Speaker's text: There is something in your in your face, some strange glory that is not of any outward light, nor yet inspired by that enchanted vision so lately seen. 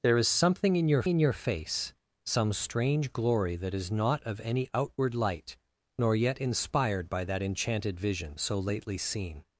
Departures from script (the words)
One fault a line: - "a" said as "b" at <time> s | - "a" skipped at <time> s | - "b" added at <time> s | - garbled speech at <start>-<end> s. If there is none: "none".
none